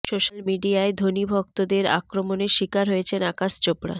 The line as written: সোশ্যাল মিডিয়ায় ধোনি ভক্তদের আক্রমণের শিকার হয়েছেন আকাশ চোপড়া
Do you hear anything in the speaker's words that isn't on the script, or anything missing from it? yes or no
no